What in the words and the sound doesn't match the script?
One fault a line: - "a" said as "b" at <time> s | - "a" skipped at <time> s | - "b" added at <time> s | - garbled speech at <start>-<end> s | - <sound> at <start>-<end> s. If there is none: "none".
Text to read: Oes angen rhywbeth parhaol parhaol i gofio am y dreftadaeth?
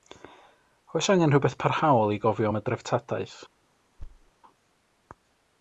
- "parhaol" skipped at 2.1 s
- thud at 4.0-4.3 s